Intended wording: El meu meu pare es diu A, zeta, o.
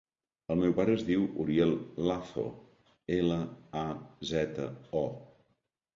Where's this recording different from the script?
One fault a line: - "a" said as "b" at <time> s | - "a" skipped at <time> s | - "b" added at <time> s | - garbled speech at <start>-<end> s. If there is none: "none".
- "meu" skipped at 0.7 s
- "Uriel Lazo ela" added at 1.4 s